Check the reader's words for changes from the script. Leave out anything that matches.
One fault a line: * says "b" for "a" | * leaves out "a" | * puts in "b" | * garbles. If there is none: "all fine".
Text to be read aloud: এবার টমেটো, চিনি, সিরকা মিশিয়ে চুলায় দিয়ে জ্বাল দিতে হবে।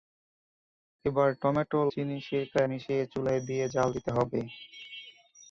all fine